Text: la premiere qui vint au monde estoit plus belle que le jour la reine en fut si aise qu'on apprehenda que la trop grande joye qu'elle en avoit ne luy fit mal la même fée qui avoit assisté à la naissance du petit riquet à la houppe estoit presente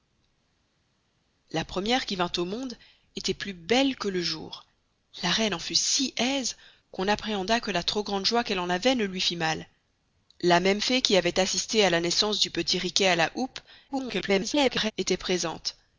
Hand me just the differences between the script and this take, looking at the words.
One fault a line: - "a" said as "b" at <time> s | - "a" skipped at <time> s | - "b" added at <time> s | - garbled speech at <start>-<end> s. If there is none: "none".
- garbled speech at 13.9-14.9 s